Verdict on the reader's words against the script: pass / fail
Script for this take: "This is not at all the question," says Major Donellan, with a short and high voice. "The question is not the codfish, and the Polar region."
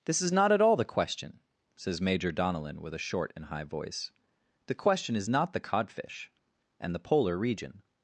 pass